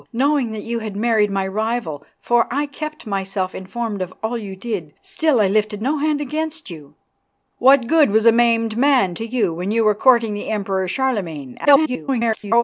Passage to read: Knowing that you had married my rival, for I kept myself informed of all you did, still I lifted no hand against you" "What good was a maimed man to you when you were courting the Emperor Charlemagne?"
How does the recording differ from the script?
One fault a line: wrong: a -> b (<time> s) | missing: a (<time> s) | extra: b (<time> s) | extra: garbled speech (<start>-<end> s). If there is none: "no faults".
extra: garbled speech (11.6-12.6 s)